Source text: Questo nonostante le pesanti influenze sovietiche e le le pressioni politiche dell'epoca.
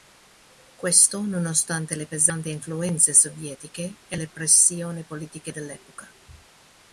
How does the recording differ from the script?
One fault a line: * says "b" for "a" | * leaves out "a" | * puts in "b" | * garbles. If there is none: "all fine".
* leaves out "le"